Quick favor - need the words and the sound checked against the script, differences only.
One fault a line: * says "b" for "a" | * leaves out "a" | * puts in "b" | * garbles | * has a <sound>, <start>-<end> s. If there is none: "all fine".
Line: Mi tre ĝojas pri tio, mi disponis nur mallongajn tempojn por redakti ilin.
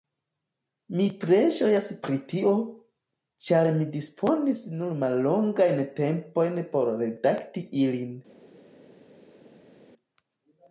* puts in "ĉar"